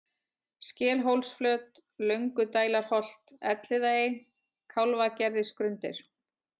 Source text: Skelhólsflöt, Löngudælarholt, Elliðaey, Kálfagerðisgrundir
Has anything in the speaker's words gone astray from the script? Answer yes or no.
no